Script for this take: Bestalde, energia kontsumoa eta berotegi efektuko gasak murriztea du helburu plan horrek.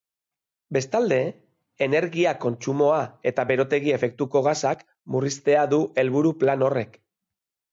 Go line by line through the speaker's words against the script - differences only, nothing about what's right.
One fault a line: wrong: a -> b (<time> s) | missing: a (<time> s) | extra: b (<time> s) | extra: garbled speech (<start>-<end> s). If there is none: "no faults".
no faults